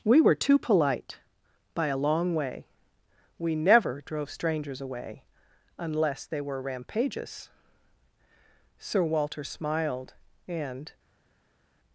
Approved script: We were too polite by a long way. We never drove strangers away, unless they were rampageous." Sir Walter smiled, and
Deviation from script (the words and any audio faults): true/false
false